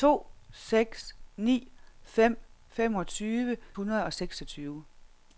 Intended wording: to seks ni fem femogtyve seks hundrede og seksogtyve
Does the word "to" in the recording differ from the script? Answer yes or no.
no